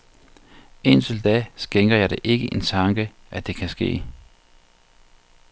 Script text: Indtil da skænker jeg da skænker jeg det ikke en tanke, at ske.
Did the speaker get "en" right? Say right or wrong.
right